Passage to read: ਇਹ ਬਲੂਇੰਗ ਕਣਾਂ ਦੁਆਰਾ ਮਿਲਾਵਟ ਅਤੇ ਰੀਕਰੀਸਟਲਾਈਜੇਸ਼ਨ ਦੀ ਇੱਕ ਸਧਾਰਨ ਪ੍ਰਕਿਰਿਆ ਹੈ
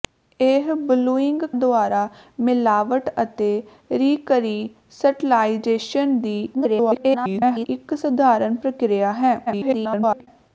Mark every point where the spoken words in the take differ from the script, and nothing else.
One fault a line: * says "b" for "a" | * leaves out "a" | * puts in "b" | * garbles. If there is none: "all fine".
* leaves out "ਕਣਾਂ"
* garbles
* garbles